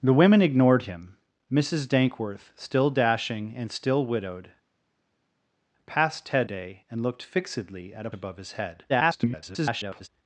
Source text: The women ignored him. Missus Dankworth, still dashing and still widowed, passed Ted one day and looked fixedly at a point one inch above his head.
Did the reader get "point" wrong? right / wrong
wrong